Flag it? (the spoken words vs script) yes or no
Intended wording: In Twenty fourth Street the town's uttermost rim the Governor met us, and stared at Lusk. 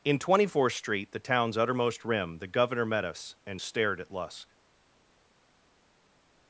no